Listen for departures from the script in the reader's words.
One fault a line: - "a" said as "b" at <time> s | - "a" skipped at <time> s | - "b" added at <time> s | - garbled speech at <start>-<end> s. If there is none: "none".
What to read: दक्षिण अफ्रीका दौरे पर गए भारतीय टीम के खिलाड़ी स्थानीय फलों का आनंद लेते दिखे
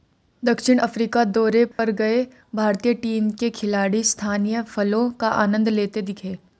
none